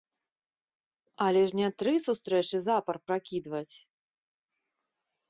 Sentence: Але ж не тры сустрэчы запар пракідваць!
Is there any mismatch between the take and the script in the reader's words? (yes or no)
no